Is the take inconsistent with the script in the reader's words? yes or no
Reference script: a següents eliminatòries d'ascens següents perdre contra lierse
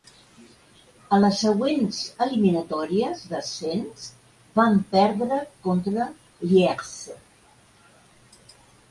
yes